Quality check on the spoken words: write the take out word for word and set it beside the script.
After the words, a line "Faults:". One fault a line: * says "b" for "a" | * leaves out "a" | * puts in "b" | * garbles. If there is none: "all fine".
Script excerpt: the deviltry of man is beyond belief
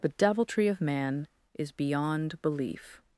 the deviltry of man is beyond belief
Faults:
all fine